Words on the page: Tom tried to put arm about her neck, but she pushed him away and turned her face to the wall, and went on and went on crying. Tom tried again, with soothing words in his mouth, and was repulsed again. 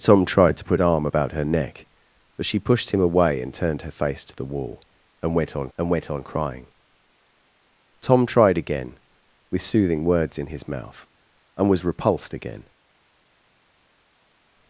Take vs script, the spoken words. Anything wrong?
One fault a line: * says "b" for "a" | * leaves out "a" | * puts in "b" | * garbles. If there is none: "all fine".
all fine